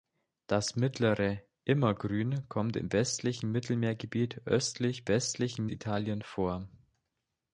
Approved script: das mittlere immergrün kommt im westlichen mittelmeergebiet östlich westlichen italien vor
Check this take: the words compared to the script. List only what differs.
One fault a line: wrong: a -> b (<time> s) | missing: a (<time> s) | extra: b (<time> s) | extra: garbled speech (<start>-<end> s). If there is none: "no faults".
no faults